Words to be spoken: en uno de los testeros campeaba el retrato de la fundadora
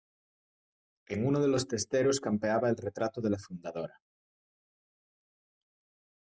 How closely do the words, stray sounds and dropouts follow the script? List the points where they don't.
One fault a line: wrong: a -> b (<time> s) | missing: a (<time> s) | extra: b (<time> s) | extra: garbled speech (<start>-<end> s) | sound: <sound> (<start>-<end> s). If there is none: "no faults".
no faults